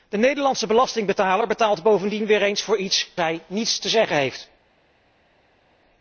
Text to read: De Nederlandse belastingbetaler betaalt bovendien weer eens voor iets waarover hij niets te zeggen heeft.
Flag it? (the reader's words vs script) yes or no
yes